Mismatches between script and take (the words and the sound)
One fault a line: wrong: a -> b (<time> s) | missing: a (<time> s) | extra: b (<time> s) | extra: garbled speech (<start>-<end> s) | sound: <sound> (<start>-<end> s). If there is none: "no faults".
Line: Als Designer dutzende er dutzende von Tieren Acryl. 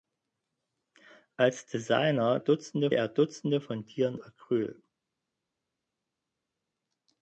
no faults